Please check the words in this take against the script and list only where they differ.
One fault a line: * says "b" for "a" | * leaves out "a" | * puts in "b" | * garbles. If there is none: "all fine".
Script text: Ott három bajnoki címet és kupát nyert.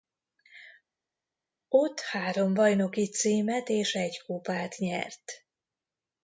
* puts in "egy"